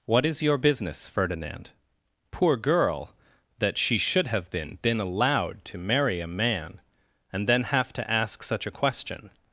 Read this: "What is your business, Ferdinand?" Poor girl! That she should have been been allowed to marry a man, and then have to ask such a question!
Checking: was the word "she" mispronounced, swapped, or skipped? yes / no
no